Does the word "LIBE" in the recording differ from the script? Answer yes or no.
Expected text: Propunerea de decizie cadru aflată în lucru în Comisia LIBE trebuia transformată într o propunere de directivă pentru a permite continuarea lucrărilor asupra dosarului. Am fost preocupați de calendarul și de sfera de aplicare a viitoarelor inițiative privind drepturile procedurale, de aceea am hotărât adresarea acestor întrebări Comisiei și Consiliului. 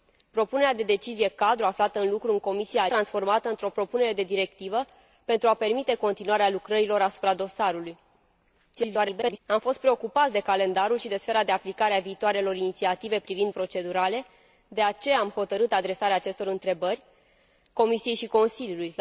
yes